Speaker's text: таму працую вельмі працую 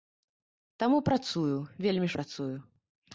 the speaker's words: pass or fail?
pass